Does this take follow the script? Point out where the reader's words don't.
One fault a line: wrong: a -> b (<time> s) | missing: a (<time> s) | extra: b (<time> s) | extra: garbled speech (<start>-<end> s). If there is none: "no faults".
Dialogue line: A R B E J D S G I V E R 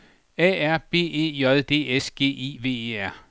no faults